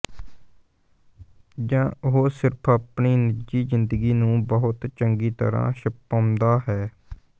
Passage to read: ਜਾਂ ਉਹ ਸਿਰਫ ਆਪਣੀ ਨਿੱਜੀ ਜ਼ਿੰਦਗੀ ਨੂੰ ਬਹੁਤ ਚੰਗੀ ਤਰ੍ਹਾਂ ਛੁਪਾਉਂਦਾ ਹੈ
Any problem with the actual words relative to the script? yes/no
no